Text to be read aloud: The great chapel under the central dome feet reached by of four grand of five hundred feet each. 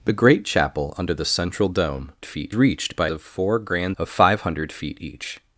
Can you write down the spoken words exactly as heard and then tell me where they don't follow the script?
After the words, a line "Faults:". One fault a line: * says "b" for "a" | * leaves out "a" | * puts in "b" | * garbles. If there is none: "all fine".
The great chapel under the central dome feet reached by of four grand of five hundred feet each.
Faults:
all fine